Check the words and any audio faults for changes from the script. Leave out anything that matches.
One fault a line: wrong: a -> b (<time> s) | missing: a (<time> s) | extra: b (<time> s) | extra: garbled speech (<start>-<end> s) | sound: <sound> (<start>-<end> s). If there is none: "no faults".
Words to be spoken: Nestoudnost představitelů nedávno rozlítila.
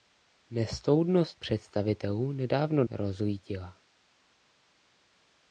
no faults